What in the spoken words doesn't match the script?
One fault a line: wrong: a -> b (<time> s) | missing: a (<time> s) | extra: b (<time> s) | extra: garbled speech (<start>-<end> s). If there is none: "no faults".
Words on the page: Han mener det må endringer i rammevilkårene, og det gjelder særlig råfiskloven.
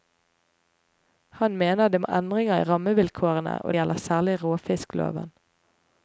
missing: det (3.7 s)